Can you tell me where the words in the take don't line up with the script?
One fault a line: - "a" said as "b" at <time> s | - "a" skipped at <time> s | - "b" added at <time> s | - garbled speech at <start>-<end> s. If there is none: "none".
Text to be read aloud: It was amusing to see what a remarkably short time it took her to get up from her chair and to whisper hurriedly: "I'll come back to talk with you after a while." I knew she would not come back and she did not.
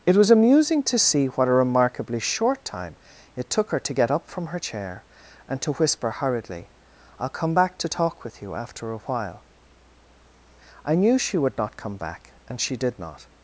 none